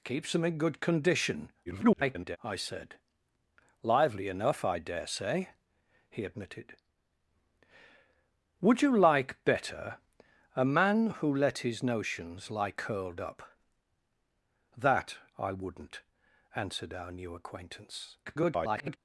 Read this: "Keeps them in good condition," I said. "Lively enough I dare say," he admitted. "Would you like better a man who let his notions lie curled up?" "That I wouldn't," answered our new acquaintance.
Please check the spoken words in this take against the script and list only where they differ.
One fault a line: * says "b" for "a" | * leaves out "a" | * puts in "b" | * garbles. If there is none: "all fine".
* garbles
* garbles